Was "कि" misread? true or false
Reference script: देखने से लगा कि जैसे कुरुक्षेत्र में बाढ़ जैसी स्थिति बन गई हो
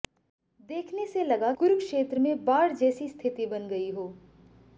true